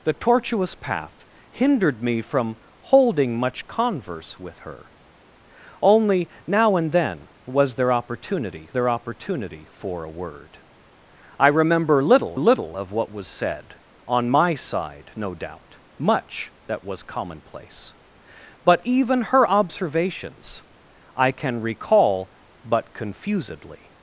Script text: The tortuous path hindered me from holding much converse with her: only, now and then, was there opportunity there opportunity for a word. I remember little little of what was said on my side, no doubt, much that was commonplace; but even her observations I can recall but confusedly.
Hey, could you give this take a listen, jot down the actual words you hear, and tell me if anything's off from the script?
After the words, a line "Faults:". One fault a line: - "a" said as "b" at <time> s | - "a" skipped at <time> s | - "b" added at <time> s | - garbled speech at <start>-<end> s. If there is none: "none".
The tortuous path hindered me from holding much converse with her: only, now and then, was there opportunity there opportunity for a word. I remember little little of what was said on my side, no doubt, much that was commonplace; but even her observations I can recall but confusedly.
Faults:
none